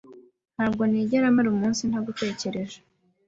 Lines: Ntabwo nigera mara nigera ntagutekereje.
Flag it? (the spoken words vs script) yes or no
yes